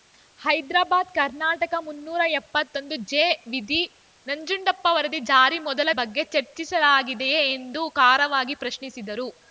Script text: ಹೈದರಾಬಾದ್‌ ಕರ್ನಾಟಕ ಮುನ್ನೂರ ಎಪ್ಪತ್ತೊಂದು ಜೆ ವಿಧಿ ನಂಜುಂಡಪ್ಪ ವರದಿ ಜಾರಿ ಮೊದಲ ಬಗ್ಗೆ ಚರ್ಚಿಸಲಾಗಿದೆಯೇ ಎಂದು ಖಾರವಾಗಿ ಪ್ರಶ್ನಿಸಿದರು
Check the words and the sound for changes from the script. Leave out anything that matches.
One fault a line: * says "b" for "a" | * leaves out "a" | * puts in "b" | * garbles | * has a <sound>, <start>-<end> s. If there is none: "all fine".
all fine